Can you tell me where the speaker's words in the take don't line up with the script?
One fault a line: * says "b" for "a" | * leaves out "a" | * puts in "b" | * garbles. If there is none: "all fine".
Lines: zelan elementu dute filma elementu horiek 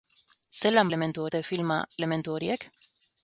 all fine